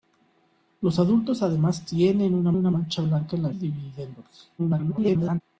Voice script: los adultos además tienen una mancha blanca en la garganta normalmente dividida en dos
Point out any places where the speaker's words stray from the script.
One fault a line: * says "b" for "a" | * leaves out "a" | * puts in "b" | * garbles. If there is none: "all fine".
* puts in "una"
* leaves out "garganta normalmente"
* garbles